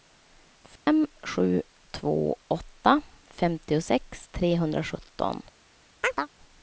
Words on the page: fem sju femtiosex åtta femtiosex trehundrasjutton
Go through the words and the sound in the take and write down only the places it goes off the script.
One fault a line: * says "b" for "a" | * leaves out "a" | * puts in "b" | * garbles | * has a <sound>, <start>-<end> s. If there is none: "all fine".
* has a dropout, 0.8-0.9 s
* says "två" for "femtiosex"
* has a chirp, 6.0-6.3 s